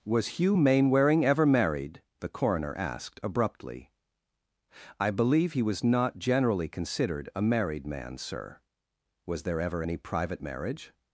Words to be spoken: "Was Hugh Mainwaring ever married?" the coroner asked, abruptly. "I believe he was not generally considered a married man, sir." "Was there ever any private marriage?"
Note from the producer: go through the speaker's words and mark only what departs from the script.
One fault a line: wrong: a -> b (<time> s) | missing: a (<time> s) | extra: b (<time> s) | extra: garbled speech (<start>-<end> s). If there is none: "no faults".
no faults